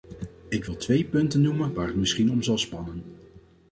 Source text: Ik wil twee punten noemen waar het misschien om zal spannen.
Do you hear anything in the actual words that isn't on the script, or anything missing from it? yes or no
no